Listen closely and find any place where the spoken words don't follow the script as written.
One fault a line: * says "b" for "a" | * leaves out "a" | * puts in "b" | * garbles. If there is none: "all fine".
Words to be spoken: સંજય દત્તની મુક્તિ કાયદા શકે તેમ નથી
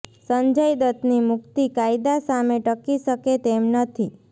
* puts in "સામે ટકી"